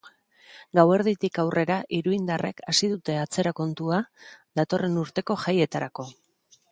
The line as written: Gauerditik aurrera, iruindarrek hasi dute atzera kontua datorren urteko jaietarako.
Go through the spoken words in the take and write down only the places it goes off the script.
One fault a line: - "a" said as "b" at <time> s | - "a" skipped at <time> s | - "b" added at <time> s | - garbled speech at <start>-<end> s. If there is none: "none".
none